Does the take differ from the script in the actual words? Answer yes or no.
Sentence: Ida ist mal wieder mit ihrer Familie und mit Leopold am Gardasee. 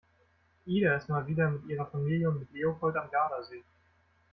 no